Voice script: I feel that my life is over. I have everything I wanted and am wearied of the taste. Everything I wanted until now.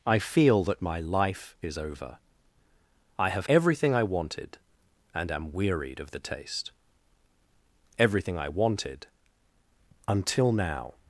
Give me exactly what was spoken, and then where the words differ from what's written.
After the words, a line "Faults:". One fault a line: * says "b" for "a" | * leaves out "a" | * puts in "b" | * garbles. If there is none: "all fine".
I feel that my life is over. I have everything I wanted and am wearied of the taste. Everything I wanted until now.
Faults:
all fine